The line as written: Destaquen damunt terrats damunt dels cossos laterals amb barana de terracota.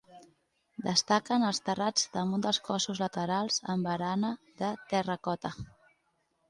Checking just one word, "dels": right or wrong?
right